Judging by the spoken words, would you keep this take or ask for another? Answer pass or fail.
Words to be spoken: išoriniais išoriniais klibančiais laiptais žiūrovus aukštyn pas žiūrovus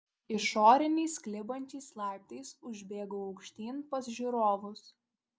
fail